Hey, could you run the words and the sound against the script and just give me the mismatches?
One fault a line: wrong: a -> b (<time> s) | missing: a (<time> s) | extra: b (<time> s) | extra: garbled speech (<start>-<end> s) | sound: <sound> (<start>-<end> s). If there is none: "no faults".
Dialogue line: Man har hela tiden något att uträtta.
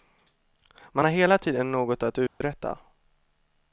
sound: dropout (2.3-2.4 s)